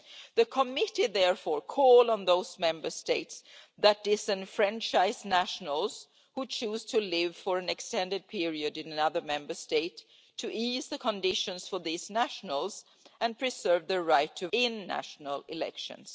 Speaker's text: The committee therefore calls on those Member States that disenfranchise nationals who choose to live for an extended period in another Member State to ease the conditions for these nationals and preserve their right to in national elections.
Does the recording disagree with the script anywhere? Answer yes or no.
no